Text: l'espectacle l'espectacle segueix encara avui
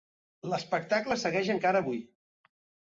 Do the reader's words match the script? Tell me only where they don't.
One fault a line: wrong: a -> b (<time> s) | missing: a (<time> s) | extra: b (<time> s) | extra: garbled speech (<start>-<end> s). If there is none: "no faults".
missing: l'espectacle (1.2 s)